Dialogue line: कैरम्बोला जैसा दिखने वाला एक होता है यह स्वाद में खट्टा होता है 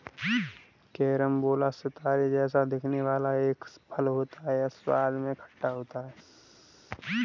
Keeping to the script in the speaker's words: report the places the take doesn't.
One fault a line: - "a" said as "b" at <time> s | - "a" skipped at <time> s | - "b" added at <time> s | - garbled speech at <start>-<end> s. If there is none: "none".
- "सितारे" added at 1.7 s
- "फल" added at 3.9 s